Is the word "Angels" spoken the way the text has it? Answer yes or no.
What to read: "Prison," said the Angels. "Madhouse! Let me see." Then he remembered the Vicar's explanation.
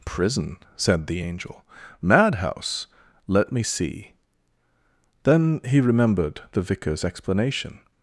no